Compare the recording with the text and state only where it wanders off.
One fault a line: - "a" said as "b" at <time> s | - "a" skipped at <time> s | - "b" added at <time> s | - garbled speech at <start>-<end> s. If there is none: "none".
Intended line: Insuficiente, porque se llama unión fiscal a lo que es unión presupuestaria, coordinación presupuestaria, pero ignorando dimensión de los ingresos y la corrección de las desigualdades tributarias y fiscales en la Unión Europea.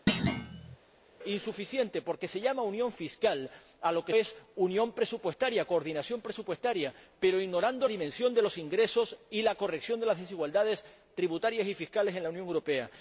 none